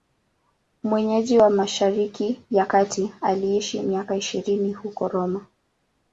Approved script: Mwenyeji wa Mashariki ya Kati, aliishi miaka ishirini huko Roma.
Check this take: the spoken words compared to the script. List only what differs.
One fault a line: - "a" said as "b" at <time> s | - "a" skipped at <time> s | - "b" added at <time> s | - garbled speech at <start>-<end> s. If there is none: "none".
none